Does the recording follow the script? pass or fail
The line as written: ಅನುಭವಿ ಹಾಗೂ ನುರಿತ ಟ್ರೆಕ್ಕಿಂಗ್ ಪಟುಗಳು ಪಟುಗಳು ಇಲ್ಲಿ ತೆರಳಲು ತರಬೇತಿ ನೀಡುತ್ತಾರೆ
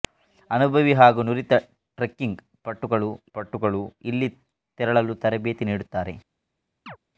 pass